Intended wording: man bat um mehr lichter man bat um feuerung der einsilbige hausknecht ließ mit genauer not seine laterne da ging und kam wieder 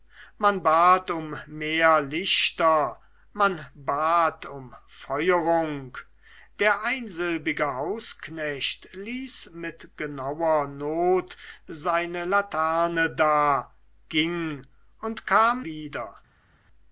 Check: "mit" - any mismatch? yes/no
no